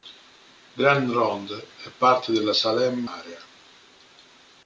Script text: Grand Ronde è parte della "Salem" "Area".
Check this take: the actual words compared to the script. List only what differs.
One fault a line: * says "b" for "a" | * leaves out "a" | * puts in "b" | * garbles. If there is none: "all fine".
all fine